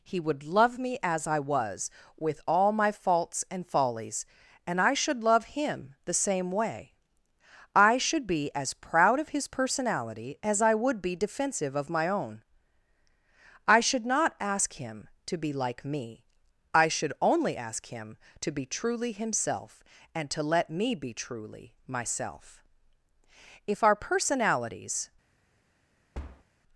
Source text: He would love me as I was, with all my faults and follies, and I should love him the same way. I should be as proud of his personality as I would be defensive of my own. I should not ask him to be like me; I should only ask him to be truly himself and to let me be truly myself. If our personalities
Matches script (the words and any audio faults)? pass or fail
fail